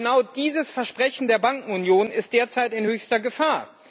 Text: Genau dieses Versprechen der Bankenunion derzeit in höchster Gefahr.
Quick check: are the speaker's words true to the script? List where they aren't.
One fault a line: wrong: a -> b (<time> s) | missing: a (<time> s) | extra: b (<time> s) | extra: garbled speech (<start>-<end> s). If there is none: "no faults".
extra: ist (2.1 s)